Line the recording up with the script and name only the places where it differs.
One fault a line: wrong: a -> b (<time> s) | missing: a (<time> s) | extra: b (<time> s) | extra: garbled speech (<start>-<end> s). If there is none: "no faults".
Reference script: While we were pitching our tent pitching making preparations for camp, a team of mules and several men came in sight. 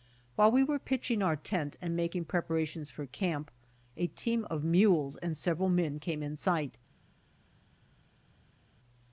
wrong: pitching -> and (1.8 s)